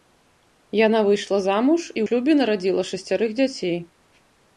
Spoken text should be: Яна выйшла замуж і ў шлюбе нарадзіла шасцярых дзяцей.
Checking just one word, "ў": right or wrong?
wrong